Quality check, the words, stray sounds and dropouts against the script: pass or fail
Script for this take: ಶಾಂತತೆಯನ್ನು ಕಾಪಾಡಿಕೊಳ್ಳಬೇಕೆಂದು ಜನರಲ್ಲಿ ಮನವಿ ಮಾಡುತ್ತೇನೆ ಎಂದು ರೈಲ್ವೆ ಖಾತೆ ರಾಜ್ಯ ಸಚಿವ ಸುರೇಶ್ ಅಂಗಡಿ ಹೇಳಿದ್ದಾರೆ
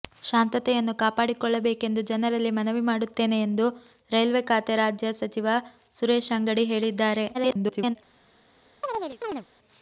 fail